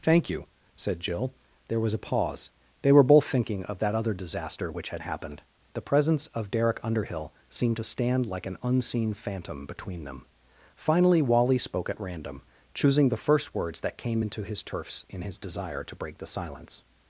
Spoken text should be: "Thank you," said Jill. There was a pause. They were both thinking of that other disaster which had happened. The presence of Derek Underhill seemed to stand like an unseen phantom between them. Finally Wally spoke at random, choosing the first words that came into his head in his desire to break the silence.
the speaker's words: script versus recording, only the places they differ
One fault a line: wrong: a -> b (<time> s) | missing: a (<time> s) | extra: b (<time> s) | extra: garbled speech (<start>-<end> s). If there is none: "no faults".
wrong: head -> turfs (14.6 s)